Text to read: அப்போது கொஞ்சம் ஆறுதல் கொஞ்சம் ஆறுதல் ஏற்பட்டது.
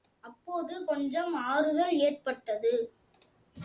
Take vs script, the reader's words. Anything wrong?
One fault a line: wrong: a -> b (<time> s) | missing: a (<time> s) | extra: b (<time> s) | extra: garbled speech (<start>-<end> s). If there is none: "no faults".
missing: கொஞ்சம் ஆறுதல் (2.0 s)